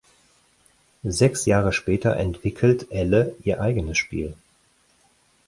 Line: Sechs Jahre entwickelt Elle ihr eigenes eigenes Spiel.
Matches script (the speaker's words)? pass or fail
fail